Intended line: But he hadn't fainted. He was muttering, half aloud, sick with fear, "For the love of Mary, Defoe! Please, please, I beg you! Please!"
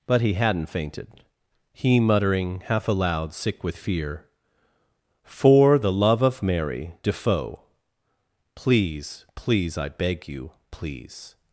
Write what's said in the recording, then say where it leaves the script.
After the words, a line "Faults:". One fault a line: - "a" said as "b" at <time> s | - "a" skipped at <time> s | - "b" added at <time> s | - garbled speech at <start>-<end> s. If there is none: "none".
But he hadn't fainted. He muttering, half aloud, sick with fear, "For the love of Mary, Defoe! Please, please, I beg you! Please!"
Faults:
- "was" skipped at 2.0 s